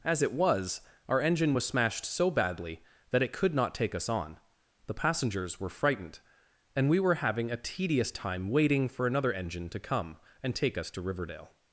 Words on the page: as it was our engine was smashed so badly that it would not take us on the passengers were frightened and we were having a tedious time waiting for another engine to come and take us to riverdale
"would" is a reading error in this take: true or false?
true